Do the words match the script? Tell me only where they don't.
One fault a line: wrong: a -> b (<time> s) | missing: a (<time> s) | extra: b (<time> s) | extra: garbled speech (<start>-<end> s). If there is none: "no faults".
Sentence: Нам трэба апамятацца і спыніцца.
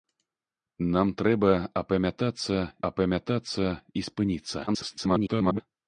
extra: апамятацца (2.9 s)
extra: garbled speech (4.7-5.6 s)